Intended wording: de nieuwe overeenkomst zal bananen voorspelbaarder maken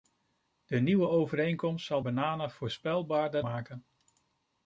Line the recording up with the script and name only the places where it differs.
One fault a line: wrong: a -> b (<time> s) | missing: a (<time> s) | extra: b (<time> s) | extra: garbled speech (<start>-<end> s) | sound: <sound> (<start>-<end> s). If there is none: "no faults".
no faults